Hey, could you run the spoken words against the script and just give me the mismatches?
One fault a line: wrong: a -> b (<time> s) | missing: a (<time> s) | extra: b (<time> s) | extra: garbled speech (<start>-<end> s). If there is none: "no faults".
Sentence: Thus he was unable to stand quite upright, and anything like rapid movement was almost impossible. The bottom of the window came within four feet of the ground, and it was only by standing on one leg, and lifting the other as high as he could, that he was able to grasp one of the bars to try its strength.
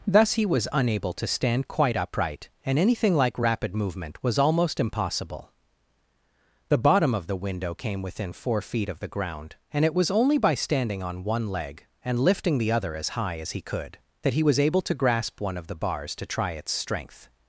no faults